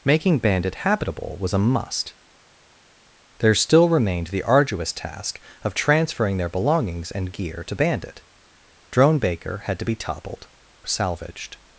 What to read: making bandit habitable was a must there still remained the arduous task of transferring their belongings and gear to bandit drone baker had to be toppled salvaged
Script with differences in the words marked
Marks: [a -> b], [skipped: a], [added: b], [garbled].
making bandit habitable was a must there still remained the arduous task of transferring their belongings and gear to bandit drone baker had to be toppled salvaged